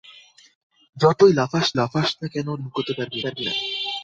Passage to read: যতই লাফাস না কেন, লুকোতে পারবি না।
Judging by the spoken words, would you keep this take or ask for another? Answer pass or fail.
fail